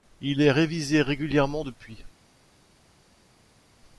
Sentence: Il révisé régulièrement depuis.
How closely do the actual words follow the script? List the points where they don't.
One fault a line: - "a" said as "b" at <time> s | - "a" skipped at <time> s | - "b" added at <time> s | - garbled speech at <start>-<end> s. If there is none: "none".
- "est" added at 0.4 s